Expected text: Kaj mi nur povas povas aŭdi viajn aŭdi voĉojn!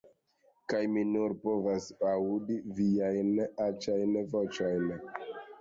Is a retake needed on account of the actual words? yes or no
yes